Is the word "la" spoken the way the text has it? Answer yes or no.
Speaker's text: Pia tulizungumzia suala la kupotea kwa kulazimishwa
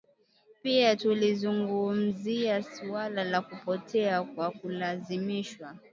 yes